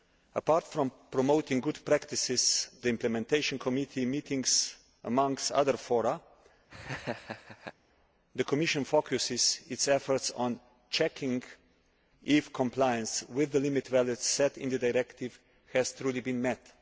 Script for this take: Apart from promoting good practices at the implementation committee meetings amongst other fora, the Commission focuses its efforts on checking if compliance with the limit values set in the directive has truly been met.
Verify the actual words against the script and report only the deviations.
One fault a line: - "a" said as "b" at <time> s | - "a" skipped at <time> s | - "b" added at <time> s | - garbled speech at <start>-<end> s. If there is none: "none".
- "at" skipped at 2.7 s